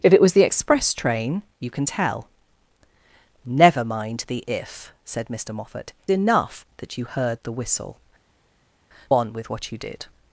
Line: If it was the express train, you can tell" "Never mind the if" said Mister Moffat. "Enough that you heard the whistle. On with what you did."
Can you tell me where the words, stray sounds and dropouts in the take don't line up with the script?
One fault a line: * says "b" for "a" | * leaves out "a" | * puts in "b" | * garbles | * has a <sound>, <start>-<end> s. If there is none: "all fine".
all fine